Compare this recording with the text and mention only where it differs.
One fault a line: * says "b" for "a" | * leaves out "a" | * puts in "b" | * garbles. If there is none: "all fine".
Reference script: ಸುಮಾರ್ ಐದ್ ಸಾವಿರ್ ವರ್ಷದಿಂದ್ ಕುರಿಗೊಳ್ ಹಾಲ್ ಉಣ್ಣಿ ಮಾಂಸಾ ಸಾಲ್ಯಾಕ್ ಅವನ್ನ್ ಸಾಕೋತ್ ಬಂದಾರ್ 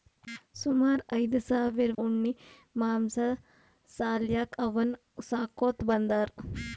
* leaves out "ವರ್ಷದಿಂದ್ ಕುರಿಗೊಳ್ ಹಾಲ್"